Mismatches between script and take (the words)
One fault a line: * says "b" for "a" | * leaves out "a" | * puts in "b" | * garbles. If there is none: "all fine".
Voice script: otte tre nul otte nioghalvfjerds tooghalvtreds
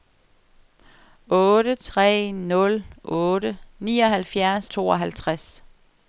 all fine